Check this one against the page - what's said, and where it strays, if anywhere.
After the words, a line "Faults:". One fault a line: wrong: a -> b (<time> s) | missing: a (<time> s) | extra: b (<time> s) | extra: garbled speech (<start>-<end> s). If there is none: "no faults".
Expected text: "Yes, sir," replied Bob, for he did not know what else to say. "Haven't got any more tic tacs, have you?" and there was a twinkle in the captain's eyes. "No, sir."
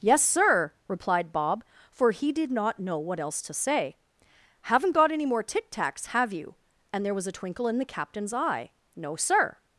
"Yes, sir," replied Bob, for he did not know what else to say. "Haven't got any more tic tacs, have you?" and there was a twinkle in the captain's eye. "No, sir."
Faults:
wrong: eyes -> eye (8.3 s)